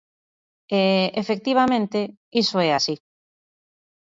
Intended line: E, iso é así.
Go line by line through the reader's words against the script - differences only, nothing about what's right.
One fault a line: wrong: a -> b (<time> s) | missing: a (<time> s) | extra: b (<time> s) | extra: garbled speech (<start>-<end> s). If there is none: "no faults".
extra: efectivamente (1.2 s)